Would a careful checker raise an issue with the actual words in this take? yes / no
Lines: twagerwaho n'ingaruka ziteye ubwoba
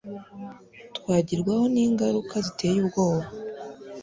no